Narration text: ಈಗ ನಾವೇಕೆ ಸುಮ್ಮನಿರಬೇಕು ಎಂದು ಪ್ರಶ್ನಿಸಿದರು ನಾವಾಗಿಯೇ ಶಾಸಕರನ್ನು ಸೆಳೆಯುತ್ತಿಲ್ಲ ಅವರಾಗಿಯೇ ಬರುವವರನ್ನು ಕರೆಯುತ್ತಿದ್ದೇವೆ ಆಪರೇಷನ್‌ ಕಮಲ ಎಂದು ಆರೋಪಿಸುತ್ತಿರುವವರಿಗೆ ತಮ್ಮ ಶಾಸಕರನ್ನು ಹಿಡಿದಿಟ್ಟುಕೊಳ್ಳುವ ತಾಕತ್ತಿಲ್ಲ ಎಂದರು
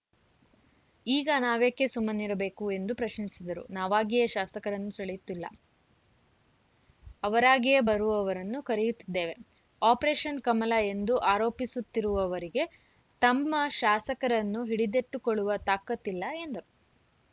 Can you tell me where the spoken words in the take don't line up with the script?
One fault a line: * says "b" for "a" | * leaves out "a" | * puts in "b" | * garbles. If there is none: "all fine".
all fine